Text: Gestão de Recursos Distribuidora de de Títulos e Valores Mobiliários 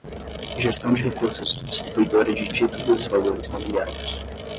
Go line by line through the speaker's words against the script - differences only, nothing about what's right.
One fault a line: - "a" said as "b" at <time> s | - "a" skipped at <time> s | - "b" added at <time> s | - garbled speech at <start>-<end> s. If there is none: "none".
- "de" skipped at 2.5 s